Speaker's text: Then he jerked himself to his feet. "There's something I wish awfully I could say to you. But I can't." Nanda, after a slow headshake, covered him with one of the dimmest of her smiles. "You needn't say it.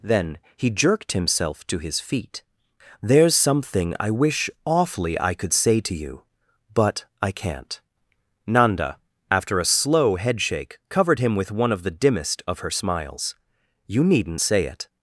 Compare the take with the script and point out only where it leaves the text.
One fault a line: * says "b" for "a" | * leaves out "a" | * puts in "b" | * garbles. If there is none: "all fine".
all fine